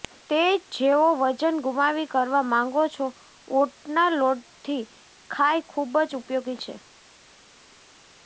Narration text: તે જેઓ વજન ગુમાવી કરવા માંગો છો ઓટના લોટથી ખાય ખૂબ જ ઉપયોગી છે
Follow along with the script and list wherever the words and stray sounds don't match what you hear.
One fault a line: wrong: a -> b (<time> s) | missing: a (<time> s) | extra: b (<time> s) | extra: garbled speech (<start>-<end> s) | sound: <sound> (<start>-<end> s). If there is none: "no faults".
no faults